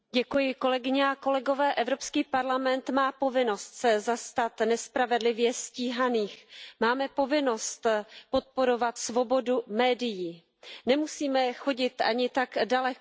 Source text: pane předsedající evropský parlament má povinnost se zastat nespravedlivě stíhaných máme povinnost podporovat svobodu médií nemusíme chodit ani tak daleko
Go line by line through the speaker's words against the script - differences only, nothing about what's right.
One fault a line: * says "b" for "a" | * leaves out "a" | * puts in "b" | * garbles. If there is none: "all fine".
all fine